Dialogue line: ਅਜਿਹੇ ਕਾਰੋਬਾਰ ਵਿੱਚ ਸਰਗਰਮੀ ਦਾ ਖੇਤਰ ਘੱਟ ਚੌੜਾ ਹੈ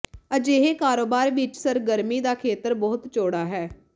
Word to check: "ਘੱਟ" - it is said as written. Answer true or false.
false